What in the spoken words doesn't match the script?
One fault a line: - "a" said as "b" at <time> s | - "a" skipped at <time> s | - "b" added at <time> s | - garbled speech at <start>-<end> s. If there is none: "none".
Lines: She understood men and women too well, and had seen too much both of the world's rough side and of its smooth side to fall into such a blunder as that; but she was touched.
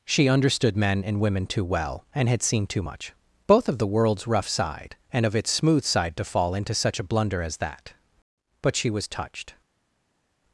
none